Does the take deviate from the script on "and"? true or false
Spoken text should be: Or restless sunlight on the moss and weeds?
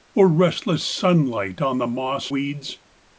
true